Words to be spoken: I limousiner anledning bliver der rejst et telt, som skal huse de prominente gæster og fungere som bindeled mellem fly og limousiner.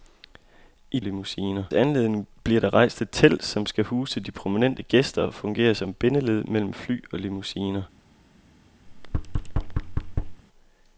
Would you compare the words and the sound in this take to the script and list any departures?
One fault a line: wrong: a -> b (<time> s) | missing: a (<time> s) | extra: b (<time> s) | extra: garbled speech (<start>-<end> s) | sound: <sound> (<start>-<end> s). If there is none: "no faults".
sound: thud (8.9-10.4 s)